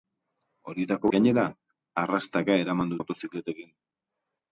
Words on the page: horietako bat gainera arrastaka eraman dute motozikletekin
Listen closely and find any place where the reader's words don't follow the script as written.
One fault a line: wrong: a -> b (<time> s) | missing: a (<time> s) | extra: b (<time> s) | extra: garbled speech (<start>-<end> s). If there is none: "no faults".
missing: bat (1.1 s)
missing: dute (3.0 s)